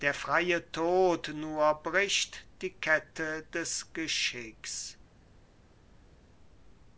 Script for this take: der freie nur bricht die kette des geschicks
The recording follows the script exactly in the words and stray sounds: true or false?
false